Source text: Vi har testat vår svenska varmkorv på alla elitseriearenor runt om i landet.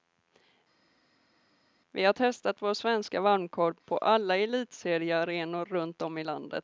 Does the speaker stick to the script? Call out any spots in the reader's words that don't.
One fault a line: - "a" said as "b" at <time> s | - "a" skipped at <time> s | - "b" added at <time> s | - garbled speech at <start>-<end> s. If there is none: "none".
none